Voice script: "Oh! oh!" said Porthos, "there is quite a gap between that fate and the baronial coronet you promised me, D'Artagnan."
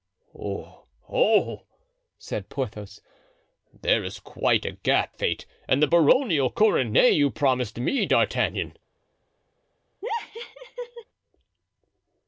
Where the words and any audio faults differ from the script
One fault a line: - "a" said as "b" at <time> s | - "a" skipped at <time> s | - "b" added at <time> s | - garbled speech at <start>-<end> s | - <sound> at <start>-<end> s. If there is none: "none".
- "between that" skipped at 5.2 s
- laugh at 10.0-11.0 s